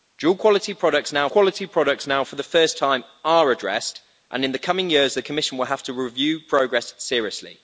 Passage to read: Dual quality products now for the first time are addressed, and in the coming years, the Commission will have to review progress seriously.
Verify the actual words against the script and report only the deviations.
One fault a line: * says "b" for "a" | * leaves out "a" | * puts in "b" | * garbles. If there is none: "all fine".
* puts in "quality products now"